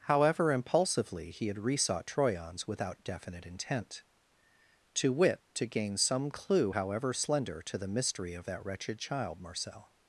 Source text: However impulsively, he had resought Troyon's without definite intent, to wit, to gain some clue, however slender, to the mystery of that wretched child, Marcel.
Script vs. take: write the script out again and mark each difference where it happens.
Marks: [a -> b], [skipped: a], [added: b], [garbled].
However impulsively, he had resought Troyon's without definite intent, to wit, to gain some clue, however slender, to the mystery of that wretched child, Marcel.